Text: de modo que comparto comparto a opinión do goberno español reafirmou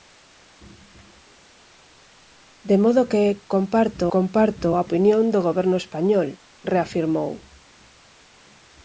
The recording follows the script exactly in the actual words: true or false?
true